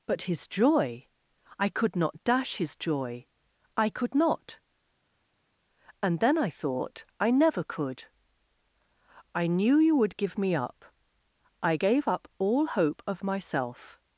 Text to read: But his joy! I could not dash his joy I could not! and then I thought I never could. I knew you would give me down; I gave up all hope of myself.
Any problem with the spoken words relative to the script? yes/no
yes